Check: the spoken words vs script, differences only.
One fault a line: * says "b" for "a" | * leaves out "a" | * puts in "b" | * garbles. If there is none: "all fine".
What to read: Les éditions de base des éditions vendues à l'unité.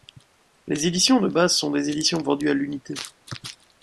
* puts in "sont"